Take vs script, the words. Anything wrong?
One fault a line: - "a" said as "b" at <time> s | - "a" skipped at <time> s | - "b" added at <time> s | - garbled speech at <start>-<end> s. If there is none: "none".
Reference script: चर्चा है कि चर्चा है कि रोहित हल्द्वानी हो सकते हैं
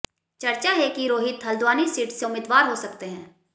- "चर्चा है कि रोहित हल्द्वानी" said as "रोहित हल्द्वानी सीट से उम्मीदवार" at 1.1 s